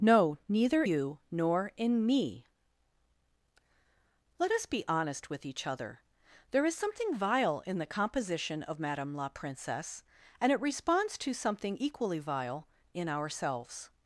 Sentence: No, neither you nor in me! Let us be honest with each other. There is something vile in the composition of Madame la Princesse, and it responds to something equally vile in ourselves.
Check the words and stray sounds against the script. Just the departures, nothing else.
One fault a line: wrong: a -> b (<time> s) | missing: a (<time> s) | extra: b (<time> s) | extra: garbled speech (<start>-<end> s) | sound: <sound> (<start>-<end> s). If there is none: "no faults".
no faults